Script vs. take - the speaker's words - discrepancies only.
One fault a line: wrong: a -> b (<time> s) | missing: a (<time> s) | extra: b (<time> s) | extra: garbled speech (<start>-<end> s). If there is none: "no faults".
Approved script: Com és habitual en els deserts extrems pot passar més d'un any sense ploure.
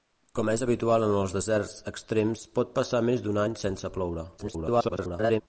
extra: garbled speech (4.4-5.4 s)